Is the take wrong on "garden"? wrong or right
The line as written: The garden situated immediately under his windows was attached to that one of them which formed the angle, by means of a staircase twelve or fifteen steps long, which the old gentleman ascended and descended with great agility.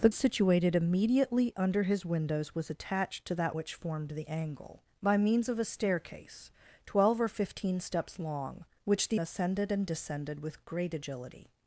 wrong